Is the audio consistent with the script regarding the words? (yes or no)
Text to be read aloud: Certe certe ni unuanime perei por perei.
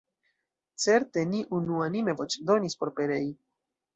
no